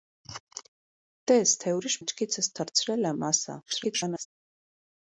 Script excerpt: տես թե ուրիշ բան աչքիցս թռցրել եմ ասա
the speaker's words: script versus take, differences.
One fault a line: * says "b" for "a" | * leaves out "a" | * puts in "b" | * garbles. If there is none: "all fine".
* leaves out "բան"
* garbles